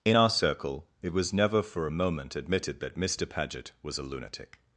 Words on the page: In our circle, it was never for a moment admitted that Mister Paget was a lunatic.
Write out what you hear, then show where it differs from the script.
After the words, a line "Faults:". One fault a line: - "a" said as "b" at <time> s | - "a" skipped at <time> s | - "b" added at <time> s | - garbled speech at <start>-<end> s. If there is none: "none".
In our circle, it was never for a moment admitted that Mister Paget was a lunatic.
Faults:
none